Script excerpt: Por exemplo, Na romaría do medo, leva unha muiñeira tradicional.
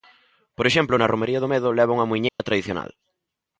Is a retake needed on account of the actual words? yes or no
no